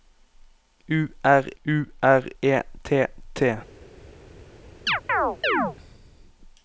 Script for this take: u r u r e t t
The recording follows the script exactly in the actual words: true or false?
true